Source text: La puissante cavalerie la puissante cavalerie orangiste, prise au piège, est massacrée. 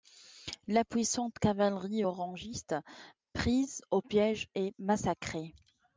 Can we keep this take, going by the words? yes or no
no